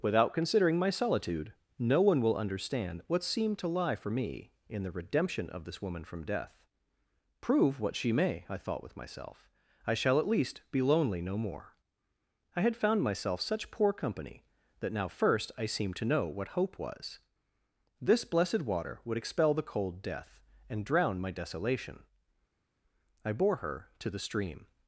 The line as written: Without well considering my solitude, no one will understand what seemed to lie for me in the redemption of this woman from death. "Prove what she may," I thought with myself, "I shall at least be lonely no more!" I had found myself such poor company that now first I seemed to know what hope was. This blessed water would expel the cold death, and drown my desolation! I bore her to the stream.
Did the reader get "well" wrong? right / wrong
wrong